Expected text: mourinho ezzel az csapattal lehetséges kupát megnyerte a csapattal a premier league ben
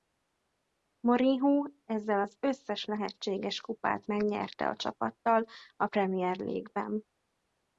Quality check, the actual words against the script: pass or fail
fail